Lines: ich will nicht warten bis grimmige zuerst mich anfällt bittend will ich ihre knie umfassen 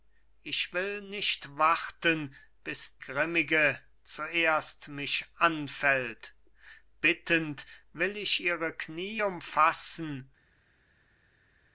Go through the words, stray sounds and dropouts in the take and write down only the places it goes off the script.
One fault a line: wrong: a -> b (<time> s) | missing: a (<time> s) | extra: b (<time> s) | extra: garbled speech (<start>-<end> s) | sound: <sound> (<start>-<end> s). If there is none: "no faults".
no faults